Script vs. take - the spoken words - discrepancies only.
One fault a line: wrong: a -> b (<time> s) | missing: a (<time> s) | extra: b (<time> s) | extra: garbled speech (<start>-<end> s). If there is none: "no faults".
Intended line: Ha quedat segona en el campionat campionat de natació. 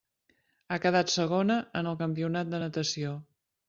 missing: campionat (2.5 s)